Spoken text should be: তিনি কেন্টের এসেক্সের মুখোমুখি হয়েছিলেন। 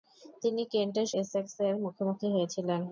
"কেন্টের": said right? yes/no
yes